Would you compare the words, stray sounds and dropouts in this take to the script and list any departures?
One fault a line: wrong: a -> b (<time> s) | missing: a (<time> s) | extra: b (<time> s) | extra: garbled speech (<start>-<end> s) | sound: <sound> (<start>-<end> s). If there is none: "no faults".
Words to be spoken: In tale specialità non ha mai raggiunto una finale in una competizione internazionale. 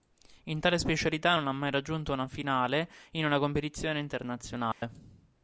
sound: dropout (4.7-4.8 s)